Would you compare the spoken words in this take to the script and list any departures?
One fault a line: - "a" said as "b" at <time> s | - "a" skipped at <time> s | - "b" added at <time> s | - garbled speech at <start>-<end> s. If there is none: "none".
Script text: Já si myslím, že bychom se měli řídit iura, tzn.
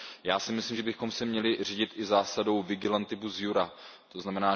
- "i zásadou vigilantibus" added at 1.9 s